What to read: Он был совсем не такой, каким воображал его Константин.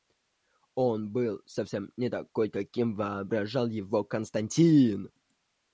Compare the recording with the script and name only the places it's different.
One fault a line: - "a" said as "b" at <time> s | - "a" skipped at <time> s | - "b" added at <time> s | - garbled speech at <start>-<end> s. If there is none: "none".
none